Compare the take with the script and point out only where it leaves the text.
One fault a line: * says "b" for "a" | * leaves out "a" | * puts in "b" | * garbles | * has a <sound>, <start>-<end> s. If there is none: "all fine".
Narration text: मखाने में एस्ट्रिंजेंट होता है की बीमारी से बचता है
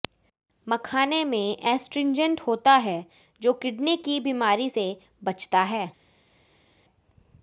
* puts in "जो किडनी"